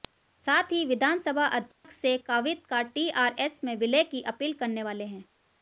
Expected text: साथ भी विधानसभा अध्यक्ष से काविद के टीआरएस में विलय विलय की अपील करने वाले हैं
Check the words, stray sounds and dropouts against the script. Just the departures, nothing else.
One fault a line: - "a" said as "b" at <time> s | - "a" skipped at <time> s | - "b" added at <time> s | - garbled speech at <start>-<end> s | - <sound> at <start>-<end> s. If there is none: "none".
- "भी" said as "ही" at 0.7 s
- dropout at 1.7-1.8 s
- "के" said as "का" at 2.7 s
- "विलय" skipped at 4.0 s